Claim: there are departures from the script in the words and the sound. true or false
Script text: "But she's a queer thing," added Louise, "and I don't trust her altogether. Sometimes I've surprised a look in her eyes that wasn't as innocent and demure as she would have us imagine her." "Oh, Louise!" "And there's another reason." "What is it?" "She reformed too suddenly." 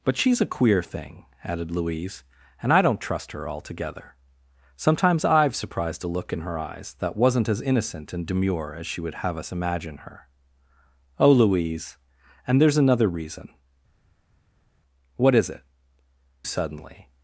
true